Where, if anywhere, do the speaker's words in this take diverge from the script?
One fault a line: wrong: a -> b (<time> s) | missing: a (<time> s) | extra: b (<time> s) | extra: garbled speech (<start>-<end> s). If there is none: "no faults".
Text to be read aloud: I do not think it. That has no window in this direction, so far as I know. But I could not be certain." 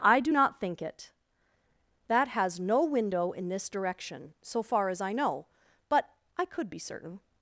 missing: not (6.7 s)